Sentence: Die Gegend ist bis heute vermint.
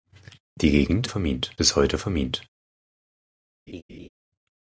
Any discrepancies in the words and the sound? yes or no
yes